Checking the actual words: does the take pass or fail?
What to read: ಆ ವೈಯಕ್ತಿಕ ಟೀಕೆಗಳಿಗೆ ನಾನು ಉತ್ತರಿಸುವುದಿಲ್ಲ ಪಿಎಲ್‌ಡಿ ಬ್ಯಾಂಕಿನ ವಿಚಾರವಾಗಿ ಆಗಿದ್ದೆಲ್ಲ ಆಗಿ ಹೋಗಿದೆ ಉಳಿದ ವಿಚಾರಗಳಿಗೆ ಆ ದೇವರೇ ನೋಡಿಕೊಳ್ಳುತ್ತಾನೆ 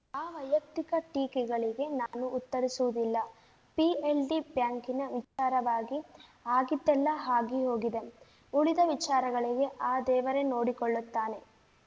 pass